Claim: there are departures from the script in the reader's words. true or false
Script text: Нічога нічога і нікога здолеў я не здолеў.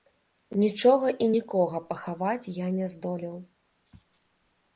true